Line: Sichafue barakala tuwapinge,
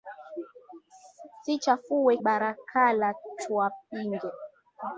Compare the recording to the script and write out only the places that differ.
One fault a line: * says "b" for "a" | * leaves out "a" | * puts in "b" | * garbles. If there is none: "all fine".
all fine